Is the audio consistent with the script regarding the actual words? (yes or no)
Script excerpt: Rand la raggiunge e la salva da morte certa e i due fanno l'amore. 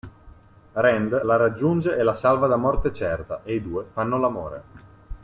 yes